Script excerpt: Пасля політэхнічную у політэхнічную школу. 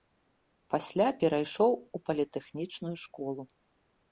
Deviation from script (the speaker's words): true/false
true